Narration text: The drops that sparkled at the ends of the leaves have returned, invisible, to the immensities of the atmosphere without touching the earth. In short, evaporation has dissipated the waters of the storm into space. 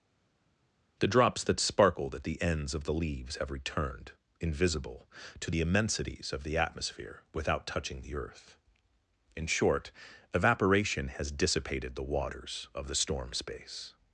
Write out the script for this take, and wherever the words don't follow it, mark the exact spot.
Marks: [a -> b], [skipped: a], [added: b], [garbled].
The drops that sparkled at the ends of the leaves have returned, invisible, to the immensities of the atmosphere without touching the earth. In short, evaporation has dissipated the waters of the storm [skipped: into] space.